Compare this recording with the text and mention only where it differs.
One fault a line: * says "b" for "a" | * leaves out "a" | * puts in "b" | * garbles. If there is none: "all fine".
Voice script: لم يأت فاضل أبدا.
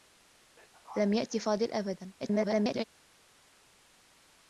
* garbles